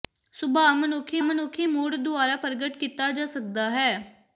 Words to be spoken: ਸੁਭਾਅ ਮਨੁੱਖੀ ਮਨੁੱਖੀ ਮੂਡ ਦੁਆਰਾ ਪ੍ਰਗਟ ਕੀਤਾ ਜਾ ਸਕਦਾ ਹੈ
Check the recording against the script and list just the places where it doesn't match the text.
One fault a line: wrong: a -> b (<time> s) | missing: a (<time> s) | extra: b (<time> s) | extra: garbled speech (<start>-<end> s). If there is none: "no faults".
no faults